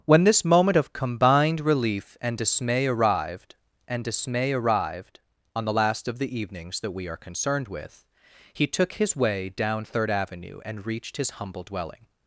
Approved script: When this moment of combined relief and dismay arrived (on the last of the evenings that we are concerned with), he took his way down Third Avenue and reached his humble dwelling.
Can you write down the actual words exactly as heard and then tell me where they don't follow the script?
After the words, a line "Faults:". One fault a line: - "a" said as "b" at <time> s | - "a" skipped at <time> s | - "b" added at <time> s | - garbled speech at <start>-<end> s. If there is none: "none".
When this moment of combined relief and dismay arrived and dismay arrived (on the last of the evenings that we are concerned with), he took his way down Third Avenue and reached his humble dwelling.
Faults:
- "and dismay arrived" added at 3.9 s